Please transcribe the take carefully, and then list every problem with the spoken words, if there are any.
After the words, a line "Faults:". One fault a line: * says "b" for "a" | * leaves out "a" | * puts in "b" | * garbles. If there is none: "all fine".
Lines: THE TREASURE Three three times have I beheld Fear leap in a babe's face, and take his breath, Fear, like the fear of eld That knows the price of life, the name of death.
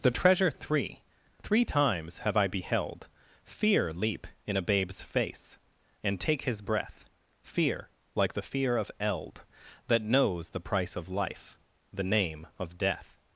THE TREASURE Three three times have I beheld Fear leap in a babe's face, and take his breath, Fear, like the fear of eld That knows the price of life, the name of death.
Faults:
all fine